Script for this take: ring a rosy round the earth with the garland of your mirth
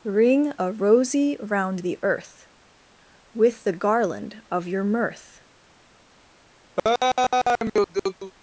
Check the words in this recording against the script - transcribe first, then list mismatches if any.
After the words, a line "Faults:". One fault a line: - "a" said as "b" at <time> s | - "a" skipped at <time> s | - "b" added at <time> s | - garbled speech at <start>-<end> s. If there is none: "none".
ring a rosy round the earth with the garland of your mirth
Faults:
none